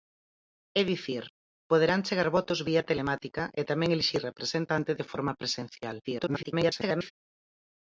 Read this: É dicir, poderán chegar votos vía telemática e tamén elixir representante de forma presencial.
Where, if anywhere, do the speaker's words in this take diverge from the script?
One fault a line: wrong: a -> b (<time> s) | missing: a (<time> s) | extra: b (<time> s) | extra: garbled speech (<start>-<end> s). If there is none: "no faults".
extra: garbled speech (6.0-7.1 s)